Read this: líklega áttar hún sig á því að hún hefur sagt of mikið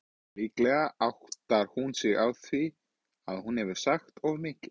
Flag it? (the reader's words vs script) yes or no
no